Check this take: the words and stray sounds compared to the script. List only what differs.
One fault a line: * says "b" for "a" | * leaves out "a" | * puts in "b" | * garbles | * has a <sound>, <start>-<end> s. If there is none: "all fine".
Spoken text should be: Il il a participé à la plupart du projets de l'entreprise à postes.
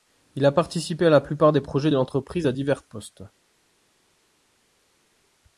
* leaves out "il"
* says "des" for "du"
* puts in "divers"